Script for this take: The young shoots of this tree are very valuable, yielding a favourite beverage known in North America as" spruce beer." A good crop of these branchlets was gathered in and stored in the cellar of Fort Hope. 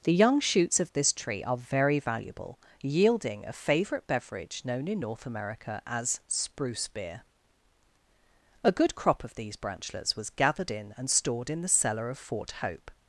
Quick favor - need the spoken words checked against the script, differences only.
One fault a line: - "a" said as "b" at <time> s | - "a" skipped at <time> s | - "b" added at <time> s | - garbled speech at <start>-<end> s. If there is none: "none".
none